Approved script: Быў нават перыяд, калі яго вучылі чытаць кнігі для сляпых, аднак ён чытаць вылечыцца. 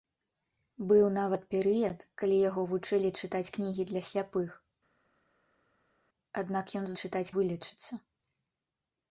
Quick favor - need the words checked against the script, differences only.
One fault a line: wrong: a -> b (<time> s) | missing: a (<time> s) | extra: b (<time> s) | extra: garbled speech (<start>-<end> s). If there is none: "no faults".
no faults